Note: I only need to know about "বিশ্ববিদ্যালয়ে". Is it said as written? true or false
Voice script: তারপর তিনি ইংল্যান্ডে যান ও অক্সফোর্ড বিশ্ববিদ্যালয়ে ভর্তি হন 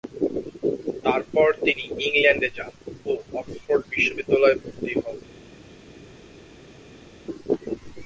true